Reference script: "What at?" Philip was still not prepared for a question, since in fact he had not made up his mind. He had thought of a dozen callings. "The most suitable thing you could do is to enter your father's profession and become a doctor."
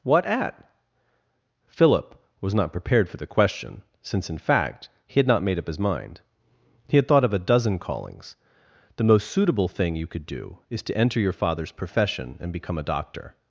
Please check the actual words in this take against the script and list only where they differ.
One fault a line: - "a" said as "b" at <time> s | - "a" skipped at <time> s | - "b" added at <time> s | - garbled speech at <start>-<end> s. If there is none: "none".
- "still" skipped at 2.5 s
- "a" said as "the" at 3.2 s